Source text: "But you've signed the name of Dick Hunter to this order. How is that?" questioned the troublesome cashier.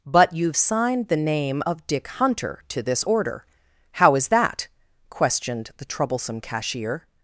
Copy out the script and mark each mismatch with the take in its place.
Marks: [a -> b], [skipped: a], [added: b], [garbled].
"But you've signed the name of Dick Hunter to this order. How is that?" questioned the troublesome cashier.